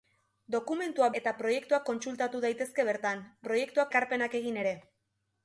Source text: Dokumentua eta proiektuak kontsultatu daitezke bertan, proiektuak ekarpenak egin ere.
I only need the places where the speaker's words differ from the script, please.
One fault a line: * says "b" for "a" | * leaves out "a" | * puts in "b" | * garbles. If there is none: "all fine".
all fine